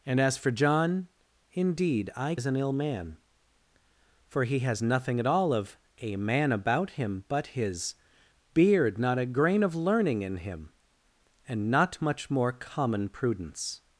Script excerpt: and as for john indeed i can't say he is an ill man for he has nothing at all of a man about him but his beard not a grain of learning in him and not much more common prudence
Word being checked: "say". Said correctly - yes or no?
no